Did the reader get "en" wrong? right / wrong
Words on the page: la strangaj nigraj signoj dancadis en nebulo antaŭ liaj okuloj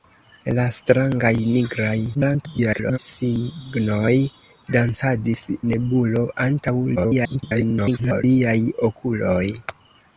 wrong